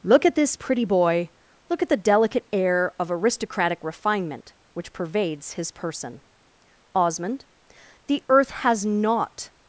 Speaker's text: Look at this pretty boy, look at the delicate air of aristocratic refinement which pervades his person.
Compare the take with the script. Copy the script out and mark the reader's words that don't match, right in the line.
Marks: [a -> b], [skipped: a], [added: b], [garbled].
Look at this pretty boy, look at the delicate air of aristocratic refinement which pervades his person. [added: Osmond the earth has not]